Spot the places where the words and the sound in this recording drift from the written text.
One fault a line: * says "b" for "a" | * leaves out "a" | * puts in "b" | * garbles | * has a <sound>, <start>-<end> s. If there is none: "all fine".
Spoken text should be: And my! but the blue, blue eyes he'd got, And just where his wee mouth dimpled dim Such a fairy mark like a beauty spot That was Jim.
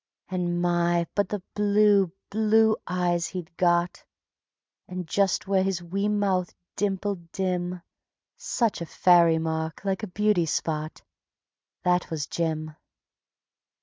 all fine